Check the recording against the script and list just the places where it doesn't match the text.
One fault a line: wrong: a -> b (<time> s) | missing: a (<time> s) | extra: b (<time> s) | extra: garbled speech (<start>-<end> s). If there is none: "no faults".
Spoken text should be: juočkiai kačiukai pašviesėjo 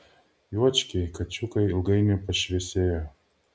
extra: ilgainiui (1.7 s)